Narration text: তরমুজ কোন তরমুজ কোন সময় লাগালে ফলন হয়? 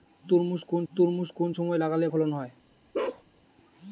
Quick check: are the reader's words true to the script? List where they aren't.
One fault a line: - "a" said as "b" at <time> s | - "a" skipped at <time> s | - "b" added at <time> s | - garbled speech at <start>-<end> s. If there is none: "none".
none